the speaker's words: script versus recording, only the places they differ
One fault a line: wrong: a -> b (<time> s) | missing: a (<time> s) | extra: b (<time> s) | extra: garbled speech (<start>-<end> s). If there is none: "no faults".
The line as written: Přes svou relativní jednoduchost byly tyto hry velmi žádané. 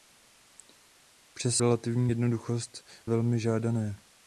missing: svou (1.6 s)
missing: byly tyto hry (2.8 s)